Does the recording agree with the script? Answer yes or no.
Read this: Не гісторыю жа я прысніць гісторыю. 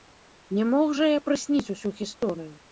no